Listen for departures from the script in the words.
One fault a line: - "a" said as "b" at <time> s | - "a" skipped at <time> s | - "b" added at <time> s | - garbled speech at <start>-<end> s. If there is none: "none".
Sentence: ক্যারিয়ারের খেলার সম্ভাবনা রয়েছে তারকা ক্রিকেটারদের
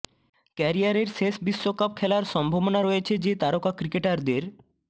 - "শেষ বিশ্বকাপ" added at 1.1 s
- "যে" added at 3.2 s